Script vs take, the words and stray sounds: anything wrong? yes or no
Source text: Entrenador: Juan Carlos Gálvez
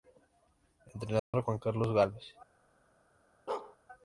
yes